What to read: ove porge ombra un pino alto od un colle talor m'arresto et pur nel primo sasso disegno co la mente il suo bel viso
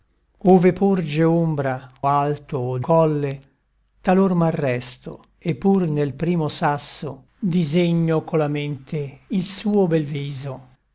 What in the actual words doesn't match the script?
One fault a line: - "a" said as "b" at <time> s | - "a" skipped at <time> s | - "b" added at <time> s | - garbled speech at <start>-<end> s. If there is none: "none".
- "un pino" skipped at 1.9 s
- "un" skipped at 2.8 s